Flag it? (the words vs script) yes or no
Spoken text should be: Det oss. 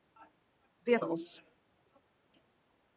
no